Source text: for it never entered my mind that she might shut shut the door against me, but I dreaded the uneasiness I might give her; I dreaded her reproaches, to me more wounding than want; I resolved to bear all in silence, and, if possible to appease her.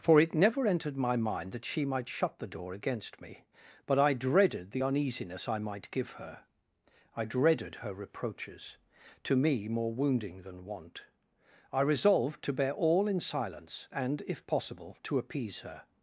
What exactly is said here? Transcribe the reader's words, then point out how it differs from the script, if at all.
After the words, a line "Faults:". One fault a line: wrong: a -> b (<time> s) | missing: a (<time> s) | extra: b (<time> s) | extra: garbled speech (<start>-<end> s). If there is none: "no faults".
for it never entered my mind that she might shut the door against me, but I dreaded the uneasiness I might give her; I dreaded her reproaches, to me more wounding than want; I resolved to bear all in silence, and, if possible to appease her.
Faults:
missing: shut (2.4 s)